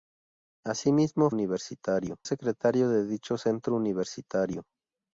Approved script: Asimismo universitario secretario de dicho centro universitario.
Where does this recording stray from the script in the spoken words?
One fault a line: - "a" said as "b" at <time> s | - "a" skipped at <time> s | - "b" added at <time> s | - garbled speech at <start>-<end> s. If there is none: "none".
none